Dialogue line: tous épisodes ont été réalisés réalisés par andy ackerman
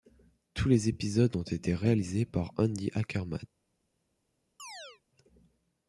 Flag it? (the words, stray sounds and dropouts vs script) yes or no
yes